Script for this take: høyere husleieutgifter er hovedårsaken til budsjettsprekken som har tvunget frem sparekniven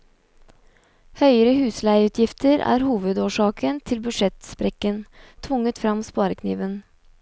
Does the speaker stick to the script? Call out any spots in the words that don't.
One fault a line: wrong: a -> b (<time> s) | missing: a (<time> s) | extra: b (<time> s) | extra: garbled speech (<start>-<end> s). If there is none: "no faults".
missing: som (5.0 s)